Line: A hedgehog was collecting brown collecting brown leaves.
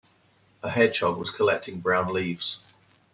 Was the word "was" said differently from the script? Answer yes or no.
no